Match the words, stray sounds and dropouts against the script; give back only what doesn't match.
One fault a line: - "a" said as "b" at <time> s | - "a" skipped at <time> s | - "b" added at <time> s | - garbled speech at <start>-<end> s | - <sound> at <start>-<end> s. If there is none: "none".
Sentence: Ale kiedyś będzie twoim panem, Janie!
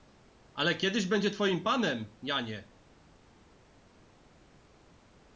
none